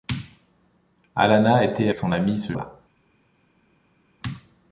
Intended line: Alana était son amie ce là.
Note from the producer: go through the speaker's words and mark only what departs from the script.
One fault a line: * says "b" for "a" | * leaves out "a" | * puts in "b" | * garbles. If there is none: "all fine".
all fine